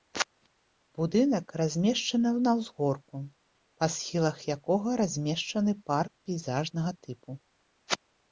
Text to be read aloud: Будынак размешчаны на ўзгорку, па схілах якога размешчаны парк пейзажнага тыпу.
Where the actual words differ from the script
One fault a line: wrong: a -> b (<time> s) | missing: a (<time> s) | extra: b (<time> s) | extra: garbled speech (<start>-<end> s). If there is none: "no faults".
no faults